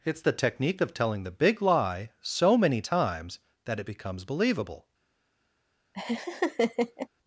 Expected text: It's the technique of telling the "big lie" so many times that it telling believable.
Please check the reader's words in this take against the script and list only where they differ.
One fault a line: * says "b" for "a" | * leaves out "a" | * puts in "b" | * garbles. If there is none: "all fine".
* says "becomes" for "telling"